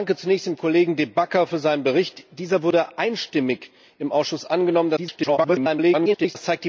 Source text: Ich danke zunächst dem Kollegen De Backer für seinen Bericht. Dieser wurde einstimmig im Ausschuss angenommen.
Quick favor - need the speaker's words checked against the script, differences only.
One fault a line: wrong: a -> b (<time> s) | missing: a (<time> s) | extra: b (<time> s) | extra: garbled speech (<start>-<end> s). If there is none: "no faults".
extra: garbled speech (5.0-6.4 s)